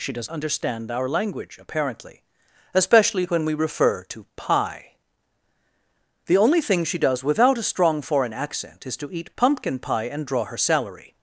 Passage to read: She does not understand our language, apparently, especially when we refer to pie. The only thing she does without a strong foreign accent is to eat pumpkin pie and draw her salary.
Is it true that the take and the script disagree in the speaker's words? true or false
true